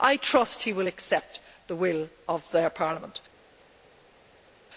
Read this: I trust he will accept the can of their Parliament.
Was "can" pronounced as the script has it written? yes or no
no